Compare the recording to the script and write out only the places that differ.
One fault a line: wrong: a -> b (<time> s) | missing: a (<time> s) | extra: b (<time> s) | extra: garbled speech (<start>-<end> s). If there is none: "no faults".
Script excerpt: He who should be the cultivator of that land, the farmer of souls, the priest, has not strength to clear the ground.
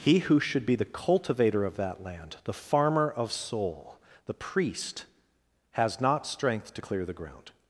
wrong: souls -> soul (3.3 s)